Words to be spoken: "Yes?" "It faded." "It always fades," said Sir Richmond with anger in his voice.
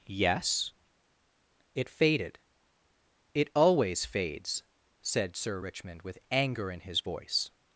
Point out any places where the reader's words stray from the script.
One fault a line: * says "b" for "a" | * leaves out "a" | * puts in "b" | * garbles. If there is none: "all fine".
all fine